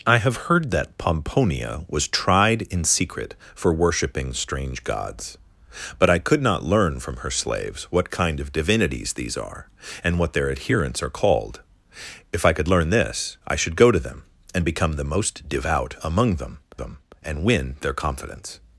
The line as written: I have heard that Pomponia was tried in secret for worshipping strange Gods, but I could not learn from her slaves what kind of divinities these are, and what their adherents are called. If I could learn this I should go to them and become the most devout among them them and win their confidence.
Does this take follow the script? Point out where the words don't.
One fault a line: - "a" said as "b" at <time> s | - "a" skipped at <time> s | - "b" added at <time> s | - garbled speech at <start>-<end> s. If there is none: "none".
none